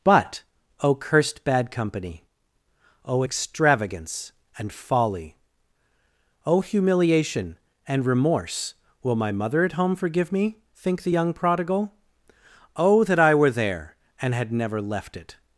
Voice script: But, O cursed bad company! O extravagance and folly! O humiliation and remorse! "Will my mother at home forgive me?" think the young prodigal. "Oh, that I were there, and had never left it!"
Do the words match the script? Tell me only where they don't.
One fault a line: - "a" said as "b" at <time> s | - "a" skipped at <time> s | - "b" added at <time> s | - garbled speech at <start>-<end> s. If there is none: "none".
none